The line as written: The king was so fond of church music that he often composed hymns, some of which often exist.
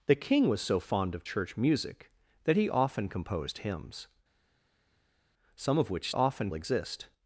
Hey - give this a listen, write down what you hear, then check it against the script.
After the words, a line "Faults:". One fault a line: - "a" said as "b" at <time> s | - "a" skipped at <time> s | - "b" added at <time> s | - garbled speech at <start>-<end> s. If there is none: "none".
The king was so fond of church music that he often composed hymns, some of which often exist.
Faults:
none